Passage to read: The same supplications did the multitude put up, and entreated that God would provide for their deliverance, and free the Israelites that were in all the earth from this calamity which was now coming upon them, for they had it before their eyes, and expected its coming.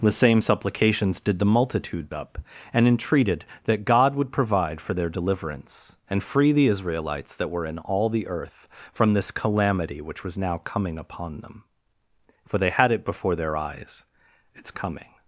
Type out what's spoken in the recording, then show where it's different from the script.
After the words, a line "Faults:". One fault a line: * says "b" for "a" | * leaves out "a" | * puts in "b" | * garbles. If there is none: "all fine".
The same supplications did the multitude up, and entreated that God would provide for their deliverance, and free the Israelites that were in all the earth from this calamity which was now coming upon them, for they had it before their eyes, its coming.
Faults:
* leaves out "put"
* leaves out "and expected"